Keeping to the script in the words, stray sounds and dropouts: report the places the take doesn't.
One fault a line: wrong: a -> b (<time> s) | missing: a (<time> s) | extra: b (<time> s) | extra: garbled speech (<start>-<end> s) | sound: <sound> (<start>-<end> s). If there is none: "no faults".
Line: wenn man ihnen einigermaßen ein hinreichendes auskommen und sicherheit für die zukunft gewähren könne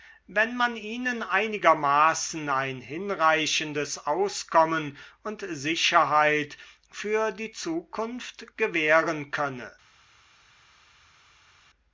no faults